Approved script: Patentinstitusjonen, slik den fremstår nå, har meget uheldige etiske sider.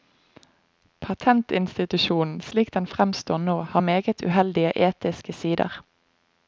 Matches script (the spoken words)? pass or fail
pass